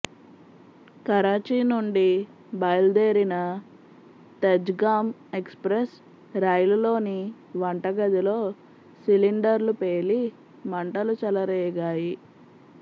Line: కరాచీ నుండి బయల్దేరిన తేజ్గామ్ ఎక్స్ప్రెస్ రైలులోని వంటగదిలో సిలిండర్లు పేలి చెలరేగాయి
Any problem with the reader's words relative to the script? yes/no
yes